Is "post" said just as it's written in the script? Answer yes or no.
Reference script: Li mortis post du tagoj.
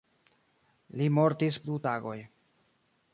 no